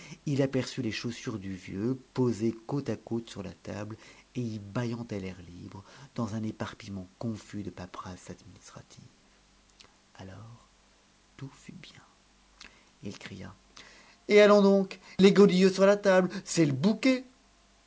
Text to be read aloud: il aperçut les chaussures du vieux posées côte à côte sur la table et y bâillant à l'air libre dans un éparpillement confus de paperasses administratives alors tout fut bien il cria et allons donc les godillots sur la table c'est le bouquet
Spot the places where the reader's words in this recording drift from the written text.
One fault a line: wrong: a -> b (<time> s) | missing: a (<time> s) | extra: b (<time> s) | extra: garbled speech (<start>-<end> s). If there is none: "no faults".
no faults